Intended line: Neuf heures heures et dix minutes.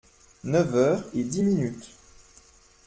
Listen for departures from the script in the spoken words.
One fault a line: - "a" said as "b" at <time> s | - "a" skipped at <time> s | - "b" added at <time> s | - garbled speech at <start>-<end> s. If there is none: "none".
- "heures" skipped at 1.0 s